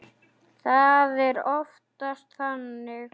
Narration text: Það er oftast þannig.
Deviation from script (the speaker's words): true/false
false